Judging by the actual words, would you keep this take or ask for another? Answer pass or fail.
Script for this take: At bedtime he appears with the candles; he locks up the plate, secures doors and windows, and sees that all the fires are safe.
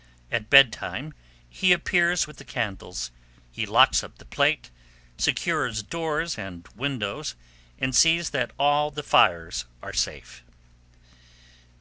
pass